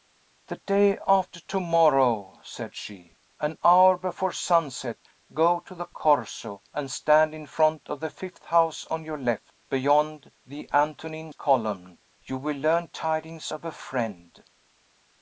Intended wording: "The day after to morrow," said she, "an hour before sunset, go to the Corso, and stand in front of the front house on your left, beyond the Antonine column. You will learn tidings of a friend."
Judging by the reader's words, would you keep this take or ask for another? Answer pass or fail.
fail